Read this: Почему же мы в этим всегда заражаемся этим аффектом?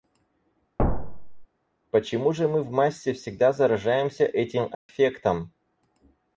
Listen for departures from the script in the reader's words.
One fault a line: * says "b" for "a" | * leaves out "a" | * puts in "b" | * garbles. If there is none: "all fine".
* says "массе" for "этим"